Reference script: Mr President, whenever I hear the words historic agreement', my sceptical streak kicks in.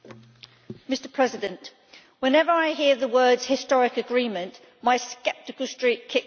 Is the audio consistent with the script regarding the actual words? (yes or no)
yes